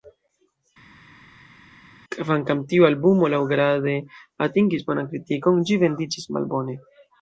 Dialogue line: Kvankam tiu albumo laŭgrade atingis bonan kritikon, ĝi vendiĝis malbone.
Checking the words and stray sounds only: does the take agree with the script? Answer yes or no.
yes